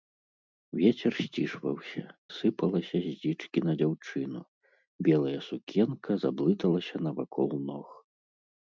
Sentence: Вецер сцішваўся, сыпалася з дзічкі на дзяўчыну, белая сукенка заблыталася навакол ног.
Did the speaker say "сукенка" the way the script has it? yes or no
yes